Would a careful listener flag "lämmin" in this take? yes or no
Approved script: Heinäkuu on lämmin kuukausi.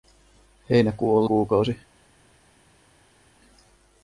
yes